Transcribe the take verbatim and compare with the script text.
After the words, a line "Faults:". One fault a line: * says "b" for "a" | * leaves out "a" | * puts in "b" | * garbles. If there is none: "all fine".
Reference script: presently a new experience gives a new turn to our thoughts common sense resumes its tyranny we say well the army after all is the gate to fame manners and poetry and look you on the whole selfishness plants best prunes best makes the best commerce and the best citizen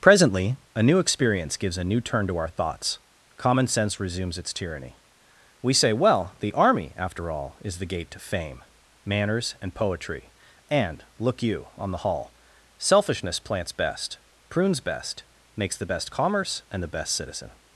presently a new experience gives a new turn to our thoughts common sense resumes its tyranny we say well the army after all is the gate to fame manners and poetry and look you on the hall selfishness plants best prunes best makes the best commerce and the best citizen
Faults:
* says "hall" for "whole"